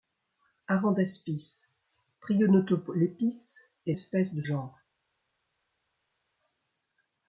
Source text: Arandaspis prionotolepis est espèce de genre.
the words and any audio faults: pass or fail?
pass